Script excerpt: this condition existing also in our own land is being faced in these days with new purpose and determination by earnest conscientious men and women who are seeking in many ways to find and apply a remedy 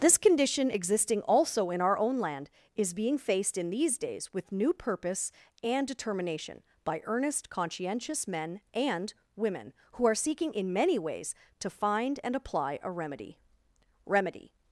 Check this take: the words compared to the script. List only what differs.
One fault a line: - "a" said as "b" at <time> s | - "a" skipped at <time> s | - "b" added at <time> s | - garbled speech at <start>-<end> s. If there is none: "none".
- "remedy" added at 14.1 s